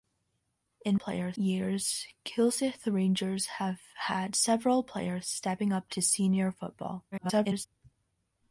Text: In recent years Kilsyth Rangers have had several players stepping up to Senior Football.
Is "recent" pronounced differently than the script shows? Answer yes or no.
yes